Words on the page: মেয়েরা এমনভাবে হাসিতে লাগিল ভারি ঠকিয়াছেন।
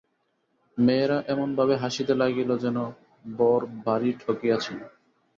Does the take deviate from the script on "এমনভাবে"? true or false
false